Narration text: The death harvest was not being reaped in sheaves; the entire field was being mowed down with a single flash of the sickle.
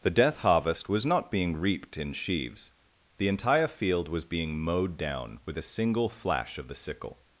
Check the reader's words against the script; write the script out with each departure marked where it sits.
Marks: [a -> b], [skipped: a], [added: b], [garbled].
The death harvest was not being reaped in sheaves; the entire field was being mowed down with a single flash of the sickle.